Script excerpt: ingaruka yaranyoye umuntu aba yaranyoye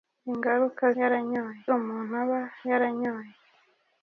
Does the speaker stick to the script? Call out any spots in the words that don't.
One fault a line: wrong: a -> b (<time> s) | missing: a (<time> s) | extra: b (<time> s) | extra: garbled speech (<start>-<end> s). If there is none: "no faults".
no faults